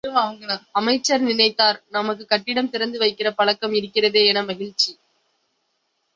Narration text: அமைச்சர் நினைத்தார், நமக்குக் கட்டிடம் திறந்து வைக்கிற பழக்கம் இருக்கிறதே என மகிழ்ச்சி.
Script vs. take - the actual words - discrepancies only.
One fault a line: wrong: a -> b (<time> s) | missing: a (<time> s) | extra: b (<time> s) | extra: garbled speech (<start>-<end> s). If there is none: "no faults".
no faults